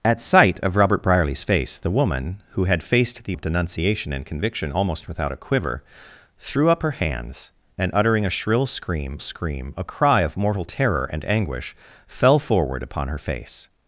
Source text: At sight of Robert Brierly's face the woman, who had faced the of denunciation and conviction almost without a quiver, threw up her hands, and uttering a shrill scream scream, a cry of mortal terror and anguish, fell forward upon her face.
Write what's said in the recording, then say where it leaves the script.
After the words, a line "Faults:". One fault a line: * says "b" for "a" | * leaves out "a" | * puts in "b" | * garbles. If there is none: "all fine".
At sight of Robert Brierly's face the woman, who had faced the of denunciation and conviction almost without a quiver, threw up her hands, and uttering a shrill scream scream, a cry of mortal terror and anguish, fell forward upon her face.
Faults:
all fine